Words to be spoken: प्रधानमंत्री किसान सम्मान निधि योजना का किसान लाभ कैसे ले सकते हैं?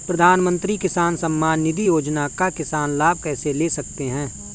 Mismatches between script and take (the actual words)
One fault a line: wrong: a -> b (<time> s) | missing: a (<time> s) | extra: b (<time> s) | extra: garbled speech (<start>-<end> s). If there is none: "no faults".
no faults